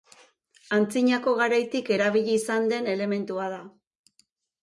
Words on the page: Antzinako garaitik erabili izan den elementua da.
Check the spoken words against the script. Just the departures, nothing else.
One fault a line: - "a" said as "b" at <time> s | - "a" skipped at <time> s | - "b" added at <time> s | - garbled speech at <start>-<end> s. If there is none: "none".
none